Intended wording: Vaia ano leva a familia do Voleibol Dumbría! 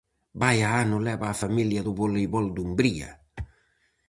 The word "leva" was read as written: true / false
true